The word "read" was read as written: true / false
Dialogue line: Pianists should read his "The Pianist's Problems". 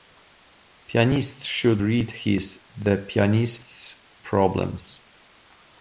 true